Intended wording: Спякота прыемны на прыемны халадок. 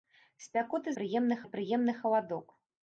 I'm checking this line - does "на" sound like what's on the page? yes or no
yes